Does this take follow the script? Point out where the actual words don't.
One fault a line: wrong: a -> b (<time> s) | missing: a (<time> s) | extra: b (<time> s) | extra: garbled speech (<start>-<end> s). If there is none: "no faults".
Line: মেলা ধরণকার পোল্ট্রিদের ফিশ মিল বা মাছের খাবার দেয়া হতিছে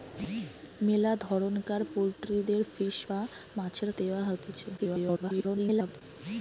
missing: মিল (3.0 s)
missing: খাবার (3.9 s)
extra: garbled speech (4.8-6.0 s)